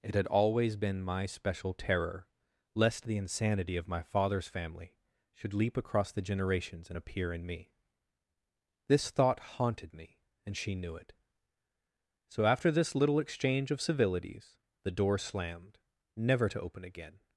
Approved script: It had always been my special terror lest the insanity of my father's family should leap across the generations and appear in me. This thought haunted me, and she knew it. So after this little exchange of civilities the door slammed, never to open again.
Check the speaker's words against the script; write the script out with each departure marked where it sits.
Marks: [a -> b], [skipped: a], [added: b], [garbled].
It had always been my special terror lest the insanity of my father's family should leap across the generations and appear in me. This thought haunted me, and she knew it. So after this little exchange of civilities the door slammed, never to open again.